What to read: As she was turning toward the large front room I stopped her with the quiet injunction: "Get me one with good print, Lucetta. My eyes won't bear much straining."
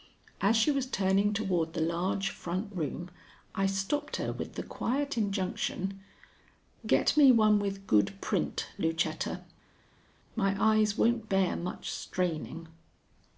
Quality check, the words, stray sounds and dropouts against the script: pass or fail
pass